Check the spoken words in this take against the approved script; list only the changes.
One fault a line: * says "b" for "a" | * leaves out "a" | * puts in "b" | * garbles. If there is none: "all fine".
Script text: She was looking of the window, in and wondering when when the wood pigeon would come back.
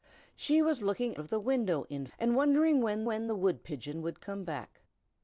all fine